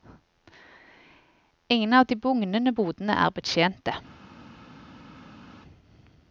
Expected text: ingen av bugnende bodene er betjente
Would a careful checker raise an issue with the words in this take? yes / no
yes